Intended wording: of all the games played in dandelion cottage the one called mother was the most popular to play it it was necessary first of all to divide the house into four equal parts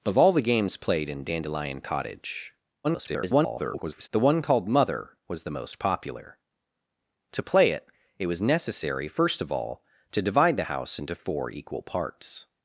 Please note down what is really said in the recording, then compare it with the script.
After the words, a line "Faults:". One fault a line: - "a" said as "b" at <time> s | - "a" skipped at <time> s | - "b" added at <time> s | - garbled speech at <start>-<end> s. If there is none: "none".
of all the games played in dandelion cottage [garbled] the one called mother was the most popular to play it it was necessary first of all to divide the house into four equal parts
Faults:
- garbled speech at 2.8-4.1 s